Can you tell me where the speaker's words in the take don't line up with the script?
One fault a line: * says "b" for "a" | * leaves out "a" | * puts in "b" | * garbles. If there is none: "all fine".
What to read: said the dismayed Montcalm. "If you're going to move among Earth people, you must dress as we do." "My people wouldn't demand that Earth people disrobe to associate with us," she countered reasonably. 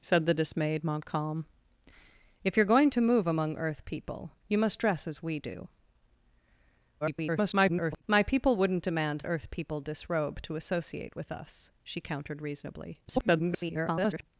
* garbles
* leaves out "that"
* garbles